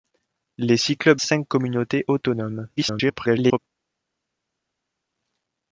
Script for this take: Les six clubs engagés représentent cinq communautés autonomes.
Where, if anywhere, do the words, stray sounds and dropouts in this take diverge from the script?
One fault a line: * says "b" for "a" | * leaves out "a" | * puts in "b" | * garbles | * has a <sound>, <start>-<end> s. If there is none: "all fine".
* leaves out "engagés représentent"
* garbles